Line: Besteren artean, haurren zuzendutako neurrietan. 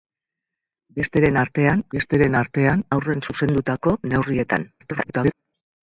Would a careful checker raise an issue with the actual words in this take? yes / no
yes